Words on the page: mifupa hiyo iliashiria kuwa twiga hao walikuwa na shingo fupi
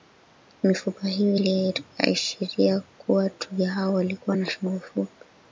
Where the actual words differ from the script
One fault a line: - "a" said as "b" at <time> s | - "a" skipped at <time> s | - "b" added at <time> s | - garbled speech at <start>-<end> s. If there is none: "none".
none